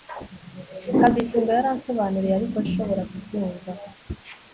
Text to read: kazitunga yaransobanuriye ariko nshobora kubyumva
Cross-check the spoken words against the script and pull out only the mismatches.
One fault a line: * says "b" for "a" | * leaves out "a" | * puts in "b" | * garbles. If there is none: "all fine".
all fine